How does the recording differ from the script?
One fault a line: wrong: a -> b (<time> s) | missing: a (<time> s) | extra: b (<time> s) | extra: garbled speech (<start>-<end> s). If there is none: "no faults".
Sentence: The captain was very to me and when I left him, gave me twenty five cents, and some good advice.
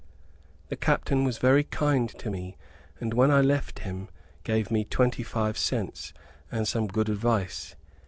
extra: kind (1.6 s)